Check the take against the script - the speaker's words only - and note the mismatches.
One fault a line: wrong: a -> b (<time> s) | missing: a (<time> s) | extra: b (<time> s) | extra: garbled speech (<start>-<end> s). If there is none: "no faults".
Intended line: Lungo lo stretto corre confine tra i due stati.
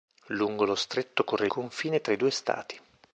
no faults